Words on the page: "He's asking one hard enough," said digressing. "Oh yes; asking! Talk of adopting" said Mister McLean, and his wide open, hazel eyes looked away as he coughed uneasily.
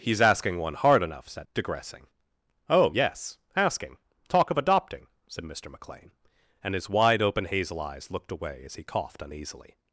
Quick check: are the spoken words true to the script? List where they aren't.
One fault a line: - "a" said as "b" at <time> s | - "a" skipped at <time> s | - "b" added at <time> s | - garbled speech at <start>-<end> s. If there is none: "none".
none